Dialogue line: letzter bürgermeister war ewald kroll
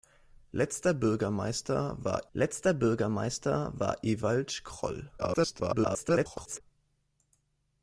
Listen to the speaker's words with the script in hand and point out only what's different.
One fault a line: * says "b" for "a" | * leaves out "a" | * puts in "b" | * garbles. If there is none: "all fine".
* puts in "letzter bürgermeister war"
* garbles